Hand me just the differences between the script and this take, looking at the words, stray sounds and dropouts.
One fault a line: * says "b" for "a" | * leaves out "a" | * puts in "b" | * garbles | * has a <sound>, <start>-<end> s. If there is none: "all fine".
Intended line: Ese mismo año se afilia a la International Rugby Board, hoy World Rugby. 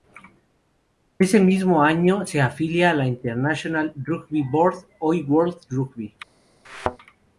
* has a thud, 6.6-7.0 s